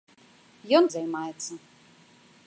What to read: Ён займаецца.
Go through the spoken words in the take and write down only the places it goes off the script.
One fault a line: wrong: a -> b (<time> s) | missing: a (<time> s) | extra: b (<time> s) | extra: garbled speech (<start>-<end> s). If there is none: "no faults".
no faults